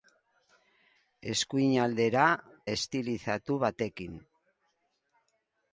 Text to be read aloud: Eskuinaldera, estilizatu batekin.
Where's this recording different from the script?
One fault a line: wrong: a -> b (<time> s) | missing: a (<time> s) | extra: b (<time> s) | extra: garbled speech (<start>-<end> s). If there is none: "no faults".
no faults